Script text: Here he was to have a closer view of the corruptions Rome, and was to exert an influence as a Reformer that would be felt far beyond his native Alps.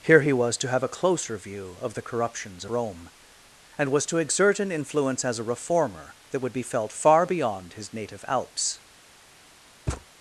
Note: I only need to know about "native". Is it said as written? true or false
true